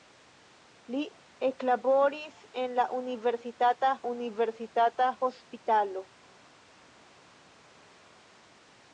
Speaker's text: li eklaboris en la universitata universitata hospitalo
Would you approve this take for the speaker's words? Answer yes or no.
yes